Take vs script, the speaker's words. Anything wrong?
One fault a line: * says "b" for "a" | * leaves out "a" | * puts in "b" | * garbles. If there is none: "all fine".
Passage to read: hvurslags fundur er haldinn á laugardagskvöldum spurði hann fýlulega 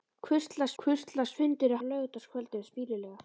* puts in "hvurslags"
* leaves out "haldinn"
* leaves out "spurði"